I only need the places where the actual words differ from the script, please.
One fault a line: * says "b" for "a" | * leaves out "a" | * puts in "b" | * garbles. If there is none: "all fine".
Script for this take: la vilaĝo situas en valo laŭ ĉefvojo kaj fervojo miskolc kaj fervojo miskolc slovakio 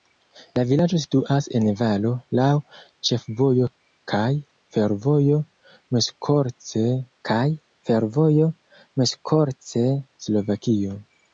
all fine